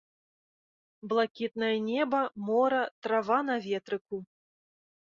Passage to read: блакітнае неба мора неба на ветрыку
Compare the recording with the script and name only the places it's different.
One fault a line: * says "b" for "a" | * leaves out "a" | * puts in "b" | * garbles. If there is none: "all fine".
* says "трава" for "неба"